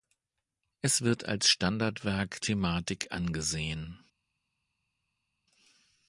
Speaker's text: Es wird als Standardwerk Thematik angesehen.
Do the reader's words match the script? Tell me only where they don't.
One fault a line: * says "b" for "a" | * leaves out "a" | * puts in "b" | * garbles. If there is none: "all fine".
all fine